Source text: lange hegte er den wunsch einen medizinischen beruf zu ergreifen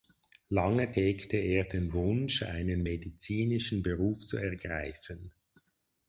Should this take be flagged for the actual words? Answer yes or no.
no